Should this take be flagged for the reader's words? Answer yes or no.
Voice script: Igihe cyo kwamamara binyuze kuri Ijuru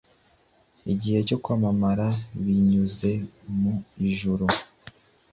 yes